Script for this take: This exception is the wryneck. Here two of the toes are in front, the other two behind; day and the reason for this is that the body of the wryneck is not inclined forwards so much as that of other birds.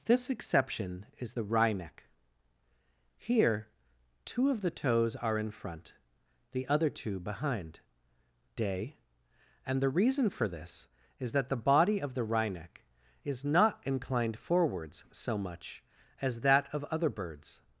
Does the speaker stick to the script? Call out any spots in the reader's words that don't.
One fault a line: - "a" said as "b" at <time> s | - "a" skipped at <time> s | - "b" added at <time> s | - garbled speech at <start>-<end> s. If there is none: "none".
none